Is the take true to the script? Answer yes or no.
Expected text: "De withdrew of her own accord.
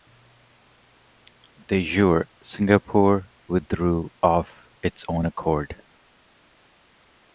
no